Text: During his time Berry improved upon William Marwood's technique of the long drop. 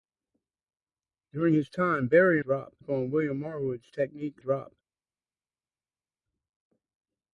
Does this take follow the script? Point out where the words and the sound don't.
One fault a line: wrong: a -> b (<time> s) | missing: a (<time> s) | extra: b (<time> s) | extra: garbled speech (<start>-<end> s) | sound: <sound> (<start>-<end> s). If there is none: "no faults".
wrong: improved -> drop (2.4 s)
missing: of the long (4.4 s)